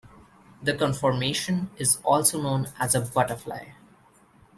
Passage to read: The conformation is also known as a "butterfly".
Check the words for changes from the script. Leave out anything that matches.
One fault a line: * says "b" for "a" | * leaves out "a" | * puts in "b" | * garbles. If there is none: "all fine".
all fine